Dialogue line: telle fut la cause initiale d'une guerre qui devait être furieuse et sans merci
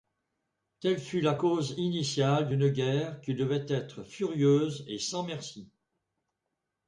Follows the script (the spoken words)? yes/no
yes